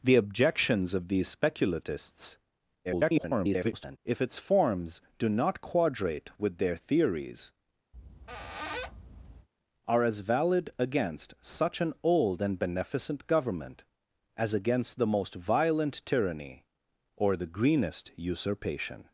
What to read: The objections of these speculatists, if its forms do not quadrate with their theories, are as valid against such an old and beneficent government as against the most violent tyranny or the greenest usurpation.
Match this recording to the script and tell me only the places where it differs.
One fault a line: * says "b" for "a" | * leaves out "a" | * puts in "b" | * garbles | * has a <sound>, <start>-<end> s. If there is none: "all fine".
* garbles
* has a squeak, 7.9-9.5 s